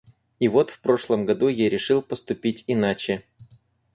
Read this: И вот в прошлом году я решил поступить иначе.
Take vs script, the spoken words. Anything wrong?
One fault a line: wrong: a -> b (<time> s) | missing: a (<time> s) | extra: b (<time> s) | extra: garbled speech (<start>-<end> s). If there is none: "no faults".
no faults